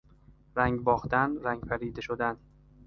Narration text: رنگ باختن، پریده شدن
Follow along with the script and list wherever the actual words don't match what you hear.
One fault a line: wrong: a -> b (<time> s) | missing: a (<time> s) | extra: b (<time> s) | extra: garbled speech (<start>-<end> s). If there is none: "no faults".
extra: رنگ (1.4 s)